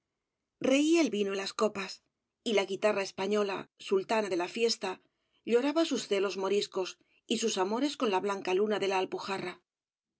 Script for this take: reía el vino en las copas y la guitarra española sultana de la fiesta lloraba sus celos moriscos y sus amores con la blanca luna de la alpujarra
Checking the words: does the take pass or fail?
pass